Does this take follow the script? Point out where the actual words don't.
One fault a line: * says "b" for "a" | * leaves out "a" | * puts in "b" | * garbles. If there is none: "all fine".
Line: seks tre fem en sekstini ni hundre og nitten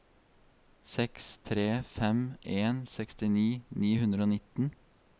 all fine